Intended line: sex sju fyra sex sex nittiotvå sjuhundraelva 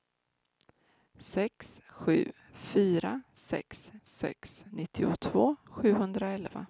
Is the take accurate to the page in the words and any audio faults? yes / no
yes